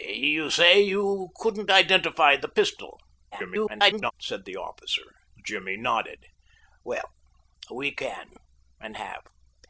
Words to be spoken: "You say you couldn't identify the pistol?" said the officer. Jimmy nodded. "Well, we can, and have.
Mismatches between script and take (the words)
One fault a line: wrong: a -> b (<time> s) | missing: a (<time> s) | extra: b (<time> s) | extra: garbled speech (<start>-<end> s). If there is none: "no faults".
extra: garbled speech (3.3-4.1 s)